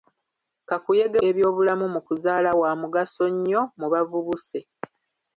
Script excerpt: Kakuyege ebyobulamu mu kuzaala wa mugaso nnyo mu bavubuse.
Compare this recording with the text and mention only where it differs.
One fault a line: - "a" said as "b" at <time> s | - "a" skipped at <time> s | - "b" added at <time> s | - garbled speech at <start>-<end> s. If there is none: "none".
none